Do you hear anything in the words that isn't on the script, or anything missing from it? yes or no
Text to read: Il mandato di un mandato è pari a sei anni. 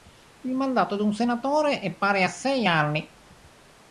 yes